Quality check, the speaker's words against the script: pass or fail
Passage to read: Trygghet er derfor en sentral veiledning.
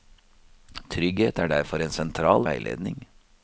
pass